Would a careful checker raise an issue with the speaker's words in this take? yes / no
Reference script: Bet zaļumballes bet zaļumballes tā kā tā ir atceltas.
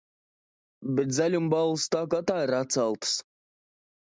yes